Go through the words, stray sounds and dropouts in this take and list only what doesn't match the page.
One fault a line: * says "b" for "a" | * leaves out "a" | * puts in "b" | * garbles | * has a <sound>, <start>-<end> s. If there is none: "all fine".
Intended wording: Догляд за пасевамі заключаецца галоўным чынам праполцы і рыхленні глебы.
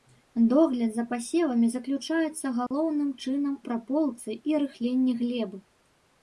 * has a dropout, 2.7-2.7 s